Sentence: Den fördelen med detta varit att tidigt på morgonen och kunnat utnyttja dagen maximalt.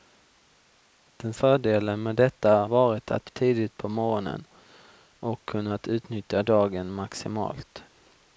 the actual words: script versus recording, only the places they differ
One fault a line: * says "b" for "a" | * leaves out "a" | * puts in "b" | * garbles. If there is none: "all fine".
all fine